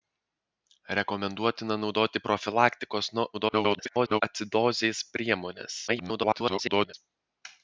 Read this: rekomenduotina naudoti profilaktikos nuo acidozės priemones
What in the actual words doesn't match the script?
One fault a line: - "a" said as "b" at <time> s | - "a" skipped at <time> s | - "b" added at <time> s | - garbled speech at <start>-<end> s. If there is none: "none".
- garbled speech at 3.3-4.2 s
- garbled speech at 5.9-6.9 s